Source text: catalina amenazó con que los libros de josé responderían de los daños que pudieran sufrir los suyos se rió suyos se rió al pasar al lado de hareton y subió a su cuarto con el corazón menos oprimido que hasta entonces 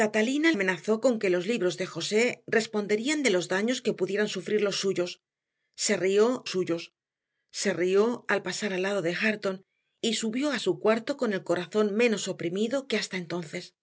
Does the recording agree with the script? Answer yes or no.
yes